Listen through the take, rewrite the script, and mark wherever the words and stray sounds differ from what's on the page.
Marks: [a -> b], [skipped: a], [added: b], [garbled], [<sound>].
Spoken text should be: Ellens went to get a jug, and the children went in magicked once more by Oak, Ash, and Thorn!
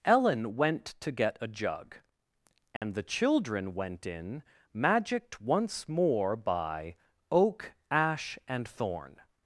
[Ellens -> Ellen] went to get a jug, and [dropout] the children went in magicked once more by Oak, Ash, and Thorn!